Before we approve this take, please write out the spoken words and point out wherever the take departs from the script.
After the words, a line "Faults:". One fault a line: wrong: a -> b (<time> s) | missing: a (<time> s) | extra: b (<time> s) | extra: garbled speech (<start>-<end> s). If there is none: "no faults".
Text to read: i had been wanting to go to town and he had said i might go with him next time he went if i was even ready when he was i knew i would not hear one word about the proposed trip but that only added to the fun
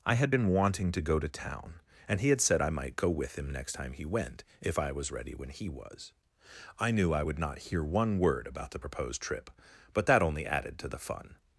i had been wanting to go to town and he had said i might go with him next time he went if i was ready when he was i knew i would not hear one word about the proposed trip but that only added to the fun
Faults:
missing: even (5.1 s)